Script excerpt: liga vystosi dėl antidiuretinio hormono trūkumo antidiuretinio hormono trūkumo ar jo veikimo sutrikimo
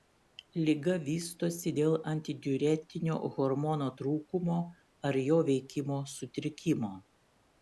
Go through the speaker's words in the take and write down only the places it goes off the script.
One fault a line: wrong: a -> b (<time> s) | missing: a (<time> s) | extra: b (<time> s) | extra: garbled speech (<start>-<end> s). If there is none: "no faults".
missing: antidiuretinio hormono trūkumo (4.6 s)